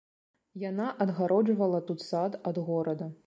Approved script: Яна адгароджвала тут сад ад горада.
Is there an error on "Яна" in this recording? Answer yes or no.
no